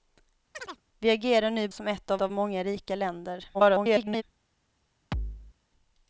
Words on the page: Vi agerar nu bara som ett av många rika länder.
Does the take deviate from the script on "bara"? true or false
true